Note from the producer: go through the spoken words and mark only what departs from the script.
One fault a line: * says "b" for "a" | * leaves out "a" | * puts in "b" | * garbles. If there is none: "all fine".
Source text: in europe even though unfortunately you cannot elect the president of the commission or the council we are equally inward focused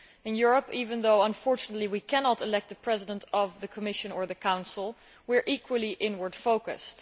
* says "we" for "you"